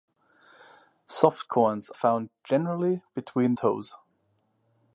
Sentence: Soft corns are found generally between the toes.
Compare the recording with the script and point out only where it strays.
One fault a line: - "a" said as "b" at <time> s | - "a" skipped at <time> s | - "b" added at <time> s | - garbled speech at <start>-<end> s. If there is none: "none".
- "are" skipped at 1.9 s
- "the" skipped at 3.5 s